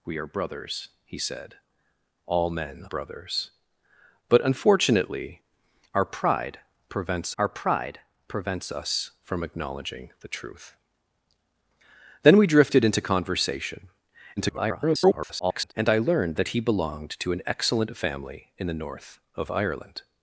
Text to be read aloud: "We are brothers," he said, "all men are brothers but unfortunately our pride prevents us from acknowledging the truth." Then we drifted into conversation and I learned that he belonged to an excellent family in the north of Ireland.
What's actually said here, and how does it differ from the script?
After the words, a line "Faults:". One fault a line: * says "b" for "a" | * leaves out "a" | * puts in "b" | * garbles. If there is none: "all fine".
"We are brothers," he said, "all men brothers but unfortunately our pride prevents our pride prevents us from acknowledging the truth." Then we drifted into conversation [garbled] and I learned that he belonged to an excellent family in the north of Ireland.
Faults:
* leaves out "are"
* puts in "our pride prevents"
* garbles